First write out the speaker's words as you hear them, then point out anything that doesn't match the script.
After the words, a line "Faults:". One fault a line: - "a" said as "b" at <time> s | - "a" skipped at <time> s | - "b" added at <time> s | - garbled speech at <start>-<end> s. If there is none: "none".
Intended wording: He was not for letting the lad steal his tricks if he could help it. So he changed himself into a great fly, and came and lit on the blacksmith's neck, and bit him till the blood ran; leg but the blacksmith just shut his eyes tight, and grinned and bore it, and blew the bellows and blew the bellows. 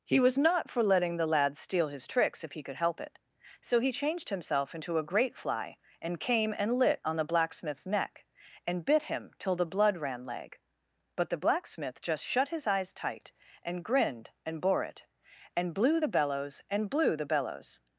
He was not for letting the lad steal his tricks if he could help it. So he changed himself into a great fly, and came and lit on the blacksmith's neck, and bit him till the blood ran; leg but the blacksmith just shut his eyes tight, and grinned and bore it, and blew the bellows and blew the bellows.
Faults:
none